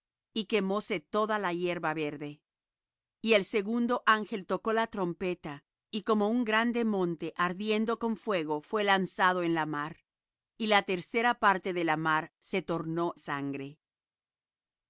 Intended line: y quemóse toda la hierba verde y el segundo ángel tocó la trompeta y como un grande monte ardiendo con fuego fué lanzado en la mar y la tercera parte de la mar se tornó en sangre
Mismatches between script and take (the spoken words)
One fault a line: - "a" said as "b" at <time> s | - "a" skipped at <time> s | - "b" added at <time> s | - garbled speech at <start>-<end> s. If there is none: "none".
- "en" skipped at 13.1 s